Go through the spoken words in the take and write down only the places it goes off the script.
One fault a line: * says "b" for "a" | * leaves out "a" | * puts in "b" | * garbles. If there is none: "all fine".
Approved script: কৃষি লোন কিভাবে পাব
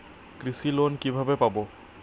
all fine